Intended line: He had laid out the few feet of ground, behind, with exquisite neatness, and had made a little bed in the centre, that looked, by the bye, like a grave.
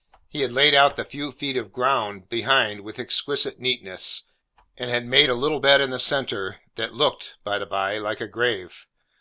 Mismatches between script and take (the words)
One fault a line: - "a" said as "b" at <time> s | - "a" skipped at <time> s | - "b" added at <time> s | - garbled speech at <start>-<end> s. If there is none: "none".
none